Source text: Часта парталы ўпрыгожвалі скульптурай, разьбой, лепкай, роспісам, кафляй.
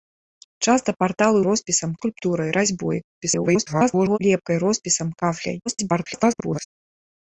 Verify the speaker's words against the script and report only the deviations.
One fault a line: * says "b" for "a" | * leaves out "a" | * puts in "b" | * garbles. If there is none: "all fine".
* says "роспісам" for "ўпрыгожвалі"
* garbles
* garbles